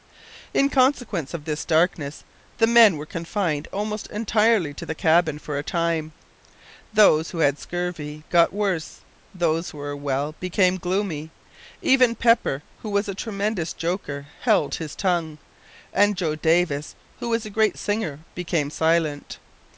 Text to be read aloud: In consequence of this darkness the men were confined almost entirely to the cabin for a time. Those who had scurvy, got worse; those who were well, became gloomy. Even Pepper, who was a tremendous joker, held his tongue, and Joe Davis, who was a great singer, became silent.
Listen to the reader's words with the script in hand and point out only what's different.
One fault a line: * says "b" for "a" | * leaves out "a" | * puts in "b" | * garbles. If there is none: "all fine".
all fine